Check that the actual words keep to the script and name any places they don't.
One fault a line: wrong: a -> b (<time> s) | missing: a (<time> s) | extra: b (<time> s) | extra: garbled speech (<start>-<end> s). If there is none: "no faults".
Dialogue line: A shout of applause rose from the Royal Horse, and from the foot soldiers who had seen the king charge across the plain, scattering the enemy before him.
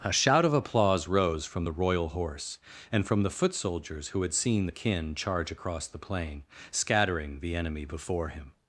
wrong: king -> kin (4.7 s)